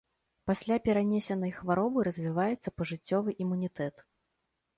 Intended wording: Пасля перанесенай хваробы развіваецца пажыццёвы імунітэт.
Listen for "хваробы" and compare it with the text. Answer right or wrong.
right